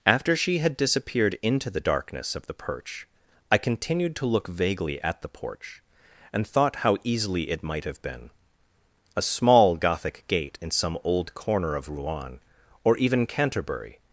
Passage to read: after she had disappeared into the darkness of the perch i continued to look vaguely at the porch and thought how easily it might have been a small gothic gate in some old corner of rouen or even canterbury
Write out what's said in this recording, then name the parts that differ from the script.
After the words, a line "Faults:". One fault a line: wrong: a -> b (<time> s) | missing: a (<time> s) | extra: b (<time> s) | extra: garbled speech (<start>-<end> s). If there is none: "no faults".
after she had disappeared into the darkness of the perch i continued to look vaguely at the porch and thought how easily it might have been a small gothic gate in some old corner of rouen or even canterbury
Faults:
no faults